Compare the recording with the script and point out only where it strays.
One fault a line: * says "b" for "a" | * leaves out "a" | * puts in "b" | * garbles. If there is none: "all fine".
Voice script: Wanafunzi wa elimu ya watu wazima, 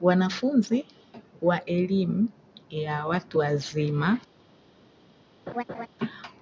all fine